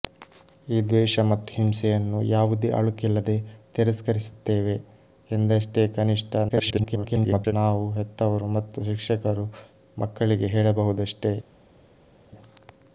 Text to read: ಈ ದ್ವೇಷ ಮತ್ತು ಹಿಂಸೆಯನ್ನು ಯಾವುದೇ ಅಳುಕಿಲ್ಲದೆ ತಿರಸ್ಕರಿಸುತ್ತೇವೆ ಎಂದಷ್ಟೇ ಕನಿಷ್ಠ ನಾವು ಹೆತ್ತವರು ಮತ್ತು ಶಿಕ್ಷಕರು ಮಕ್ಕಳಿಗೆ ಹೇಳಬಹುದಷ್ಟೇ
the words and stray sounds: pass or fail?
fail